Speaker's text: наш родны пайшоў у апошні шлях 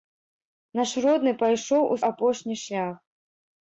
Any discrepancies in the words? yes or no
no